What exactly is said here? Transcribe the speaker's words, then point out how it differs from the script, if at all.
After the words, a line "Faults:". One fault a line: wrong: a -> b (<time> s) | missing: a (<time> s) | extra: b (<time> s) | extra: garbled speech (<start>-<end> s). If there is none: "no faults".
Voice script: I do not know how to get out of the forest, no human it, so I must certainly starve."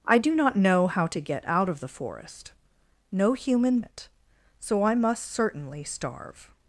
I do not know how to get out of the forest, no human it, so I must certainly starve."
Faults:
no faults